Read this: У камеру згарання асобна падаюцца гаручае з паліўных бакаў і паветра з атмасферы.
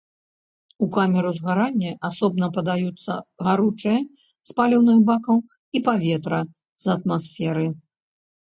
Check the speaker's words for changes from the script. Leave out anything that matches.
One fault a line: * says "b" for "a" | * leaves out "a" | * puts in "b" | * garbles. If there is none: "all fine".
all fine